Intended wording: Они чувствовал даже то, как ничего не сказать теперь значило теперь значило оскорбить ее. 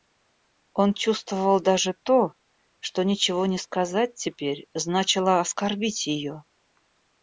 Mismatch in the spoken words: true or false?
true